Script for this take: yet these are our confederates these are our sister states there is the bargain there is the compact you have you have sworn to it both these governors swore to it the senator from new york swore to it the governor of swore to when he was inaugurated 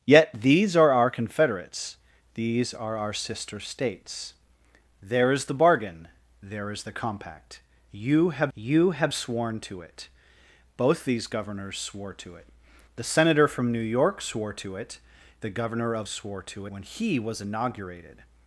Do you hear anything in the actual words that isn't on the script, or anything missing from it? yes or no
no